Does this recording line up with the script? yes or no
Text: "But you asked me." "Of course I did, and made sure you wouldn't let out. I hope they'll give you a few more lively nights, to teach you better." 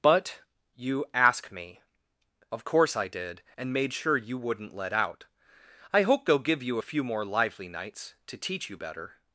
no